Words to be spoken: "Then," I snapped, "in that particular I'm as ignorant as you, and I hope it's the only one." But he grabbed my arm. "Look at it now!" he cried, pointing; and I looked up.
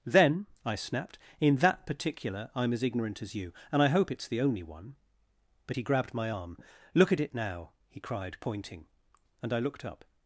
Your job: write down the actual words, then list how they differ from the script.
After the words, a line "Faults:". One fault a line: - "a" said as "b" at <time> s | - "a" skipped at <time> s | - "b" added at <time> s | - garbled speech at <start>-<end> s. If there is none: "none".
"Then," I snapped, "in that particular I'm as ignorant as you, and I hope it's the only one." But he grabbed my arm. "Look at it now!" he cried, pointing; and I looked up.
Faults:
none